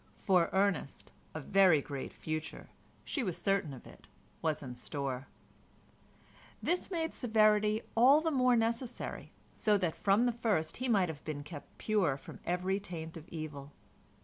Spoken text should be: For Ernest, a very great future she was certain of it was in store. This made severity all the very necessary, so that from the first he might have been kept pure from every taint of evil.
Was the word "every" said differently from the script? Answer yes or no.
no